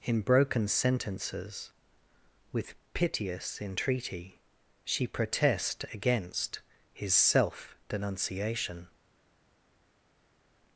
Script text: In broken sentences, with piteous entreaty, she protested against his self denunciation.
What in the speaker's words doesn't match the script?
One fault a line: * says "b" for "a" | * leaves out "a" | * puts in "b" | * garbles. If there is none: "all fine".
* says "protest" for "protested"